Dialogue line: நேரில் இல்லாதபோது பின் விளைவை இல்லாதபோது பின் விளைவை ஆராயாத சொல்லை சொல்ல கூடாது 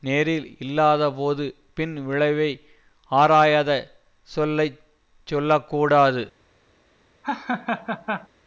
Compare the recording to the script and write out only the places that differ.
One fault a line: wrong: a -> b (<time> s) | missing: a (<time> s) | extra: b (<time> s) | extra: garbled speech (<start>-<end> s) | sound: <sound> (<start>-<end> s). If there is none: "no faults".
missing: இல்லாதபோது பின் விளைவை (2.5 s)
sound: laugh (7.2-8.3 s)